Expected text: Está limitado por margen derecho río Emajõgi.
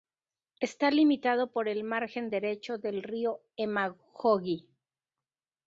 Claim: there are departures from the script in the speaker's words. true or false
true